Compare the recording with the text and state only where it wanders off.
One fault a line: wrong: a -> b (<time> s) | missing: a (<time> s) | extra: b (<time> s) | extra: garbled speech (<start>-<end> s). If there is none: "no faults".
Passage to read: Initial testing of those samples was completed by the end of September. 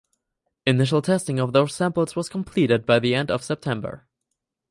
no faults